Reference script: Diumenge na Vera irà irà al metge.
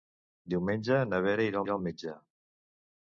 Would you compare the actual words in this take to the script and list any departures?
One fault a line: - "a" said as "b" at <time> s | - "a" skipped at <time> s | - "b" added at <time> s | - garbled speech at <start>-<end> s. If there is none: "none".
none